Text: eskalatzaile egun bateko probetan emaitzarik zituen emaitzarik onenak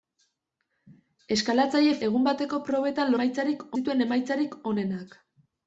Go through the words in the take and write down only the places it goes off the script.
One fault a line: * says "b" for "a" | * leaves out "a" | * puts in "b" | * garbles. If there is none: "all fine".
all fine